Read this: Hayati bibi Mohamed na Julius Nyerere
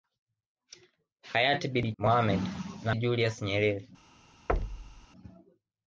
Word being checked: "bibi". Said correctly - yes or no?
yes